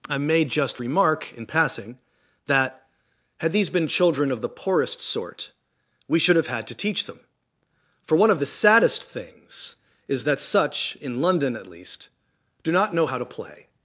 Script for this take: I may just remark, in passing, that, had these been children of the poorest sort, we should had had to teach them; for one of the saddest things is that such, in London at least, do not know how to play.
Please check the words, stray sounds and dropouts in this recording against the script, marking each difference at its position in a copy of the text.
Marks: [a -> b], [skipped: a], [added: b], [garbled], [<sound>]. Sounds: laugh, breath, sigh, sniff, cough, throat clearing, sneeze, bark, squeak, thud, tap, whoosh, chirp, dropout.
I may just remark, in passing, that, had these been children of the poorest sort, we should [had -> have] had to teach them; for one of the saddest things is that such, in London at least, do not know how to play.